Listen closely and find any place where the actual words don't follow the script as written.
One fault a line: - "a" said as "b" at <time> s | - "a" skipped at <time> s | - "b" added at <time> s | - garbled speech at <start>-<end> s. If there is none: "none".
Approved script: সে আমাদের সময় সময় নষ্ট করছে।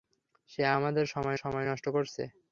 none